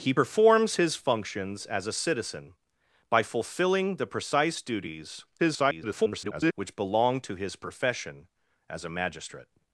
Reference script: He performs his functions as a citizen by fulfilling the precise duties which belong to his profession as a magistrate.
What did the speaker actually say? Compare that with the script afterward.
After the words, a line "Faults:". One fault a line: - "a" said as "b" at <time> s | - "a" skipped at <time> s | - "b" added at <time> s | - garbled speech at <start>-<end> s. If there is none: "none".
He performs his functions as a citizen by fulfilling the precise duties [garbled] which belong to his profession as a magistrate.
Faults:
- garbled speech at 5.4-6.5 s